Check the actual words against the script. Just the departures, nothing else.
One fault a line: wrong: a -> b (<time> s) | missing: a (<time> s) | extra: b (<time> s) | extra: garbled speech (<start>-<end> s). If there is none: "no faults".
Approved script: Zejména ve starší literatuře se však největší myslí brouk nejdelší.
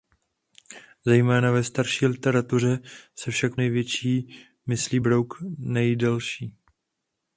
no faults